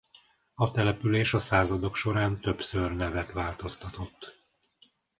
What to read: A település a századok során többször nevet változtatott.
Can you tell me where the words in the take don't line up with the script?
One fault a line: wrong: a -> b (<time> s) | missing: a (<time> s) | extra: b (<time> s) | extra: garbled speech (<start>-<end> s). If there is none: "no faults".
no faults